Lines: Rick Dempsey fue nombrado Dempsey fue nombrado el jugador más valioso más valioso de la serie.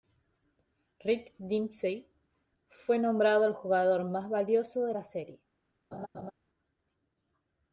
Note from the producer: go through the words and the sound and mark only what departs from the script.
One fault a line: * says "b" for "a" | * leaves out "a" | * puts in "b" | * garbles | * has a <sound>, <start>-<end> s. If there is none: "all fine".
* leaves out "Dempsey fue nombrado"
* leaves out "más valioso"
* has a laugh, 5.9-6.3 s